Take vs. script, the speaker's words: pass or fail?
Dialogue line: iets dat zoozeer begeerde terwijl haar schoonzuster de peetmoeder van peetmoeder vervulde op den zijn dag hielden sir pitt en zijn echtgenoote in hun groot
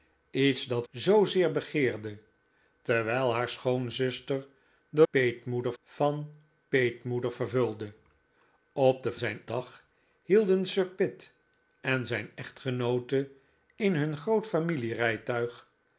pass